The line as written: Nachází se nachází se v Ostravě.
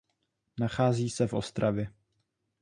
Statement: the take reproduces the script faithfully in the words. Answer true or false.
false